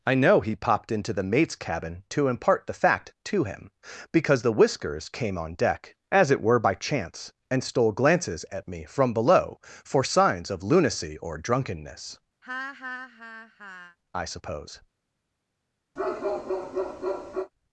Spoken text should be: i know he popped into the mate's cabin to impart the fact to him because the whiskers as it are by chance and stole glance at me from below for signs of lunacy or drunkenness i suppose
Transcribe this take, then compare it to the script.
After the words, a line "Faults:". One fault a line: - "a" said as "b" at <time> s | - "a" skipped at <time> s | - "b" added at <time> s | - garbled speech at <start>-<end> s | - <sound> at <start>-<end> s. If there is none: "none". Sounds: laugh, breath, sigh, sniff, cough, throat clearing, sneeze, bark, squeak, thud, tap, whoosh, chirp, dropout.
i know he popped into the mate's cabin to impart the fact to him because the whiskers came on deck as it were by chance and stole glances at me from below for signs of lunacy or drunkenness i suppose
Faults:
- "came on deck" added at 5.1 s
- "are" said as "were" at 6.4 s
- "glance" said as "glances" at 7.9 s
- laugh at 12.4-14.0 s
- bark at 16.0-17.5 s